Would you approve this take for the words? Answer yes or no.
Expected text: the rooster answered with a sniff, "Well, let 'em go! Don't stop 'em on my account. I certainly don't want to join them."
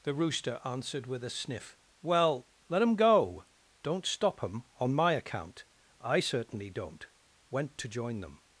no